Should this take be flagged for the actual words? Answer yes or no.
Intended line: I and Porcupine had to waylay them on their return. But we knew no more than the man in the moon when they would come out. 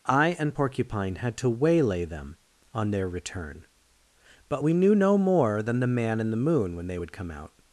no